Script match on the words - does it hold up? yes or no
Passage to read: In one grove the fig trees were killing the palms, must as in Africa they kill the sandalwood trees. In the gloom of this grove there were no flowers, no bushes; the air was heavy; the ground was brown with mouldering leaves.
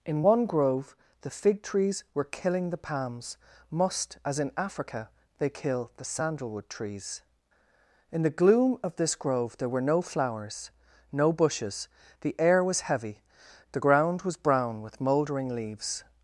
yes